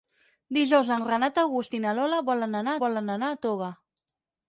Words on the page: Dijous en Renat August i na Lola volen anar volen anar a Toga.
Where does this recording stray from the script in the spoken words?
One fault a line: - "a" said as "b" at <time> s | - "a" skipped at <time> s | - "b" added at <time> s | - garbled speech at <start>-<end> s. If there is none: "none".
none